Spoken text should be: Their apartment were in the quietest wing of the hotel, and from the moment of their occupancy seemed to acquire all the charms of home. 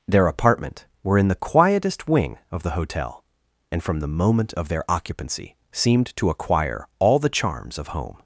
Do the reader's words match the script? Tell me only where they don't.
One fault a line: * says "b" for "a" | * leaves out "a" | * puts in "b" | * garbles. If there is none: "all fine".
all fine